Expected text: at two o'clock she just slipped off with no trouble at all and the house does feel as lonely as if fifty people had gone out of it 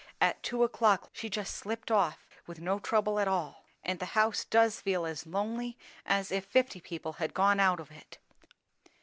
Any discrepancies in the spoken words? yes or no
no